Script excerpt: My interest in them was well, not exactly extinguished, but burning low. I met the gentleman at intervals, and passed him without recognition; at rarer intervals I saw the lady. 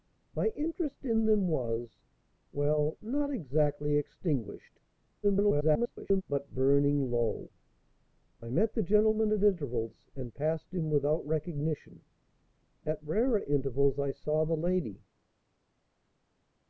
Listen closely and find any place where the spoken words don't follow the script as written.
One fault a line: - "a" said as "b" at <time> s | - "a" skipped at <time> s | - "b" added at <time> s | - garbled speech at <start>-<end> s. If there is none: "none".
- garbled speech at 5.2-6.2 s